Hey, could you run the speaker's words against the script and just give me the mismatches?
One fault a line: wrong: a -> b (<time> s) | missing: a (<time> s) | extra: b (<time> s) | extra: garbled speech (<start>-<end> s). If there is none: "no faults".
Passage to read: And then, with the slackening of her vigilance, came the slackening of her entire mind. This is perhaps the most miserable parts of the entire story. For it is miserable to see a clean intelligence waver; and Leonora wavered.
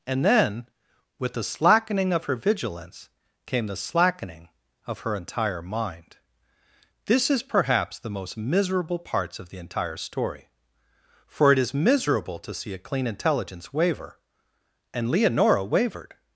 no faults